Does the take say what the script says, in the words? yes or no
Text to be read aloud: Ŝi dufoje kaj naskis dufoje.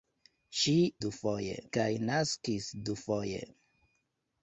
yes